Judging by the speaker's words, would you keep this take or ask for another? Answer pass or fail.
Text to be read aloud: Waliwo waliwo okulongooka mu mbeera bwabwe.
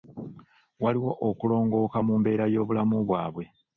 fail